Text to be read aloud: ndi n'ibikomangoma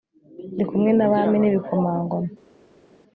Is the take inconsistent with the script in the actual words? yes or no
yes